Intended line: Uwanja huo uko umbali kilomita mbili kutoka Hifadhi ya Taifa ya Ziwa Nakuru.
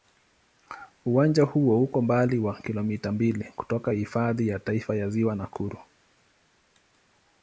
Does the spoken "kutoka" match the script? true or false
true